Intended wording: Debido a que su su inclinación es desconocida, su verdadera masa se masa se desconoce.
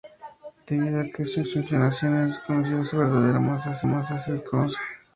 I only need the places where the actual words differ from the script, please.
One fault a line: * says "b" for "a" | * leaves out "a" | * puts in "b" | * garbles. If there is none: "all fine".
all fine